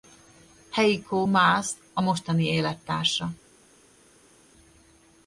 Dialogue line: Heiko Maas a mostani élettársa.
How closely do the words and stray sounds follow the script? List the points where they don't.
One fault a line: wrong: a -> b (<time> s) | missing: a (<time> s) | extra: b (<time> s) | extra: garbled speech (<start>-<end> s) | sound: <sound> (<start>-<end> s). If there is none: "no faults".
no faults